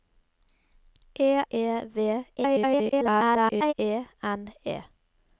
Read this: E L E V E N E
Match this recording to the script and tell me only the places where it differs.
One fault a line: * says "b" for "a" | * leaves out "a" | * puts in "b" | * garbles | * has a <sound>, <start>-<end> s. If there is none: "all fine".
* leaves out "L"
* garbles